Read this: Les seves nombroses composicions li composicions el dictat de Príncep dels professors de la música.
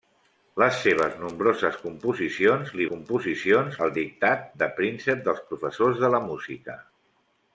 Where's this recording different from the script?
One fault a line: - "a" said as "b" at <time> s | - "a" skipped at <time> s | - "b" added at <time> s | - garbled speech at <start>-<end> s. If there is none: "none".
none